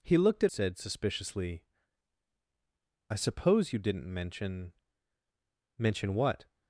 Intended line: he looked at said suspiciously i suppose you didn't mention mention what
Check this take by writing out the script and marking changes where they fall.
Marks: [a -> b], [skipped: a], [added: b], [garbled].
he looked at said suspiciously i suppose you didn't mention mention what